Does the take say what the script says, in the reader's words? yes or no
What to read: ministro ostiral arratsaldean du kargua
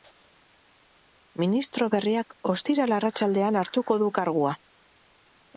no